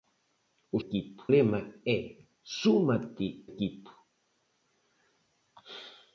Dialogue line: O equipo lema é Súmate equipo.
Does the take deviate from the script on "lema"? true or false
false